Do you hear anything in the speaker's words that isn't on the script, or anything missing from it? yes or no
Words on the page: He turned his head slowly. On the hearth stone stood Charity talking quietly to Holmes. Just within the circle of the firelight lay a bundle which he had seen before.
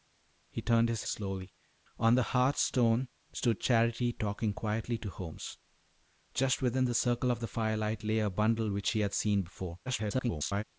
yes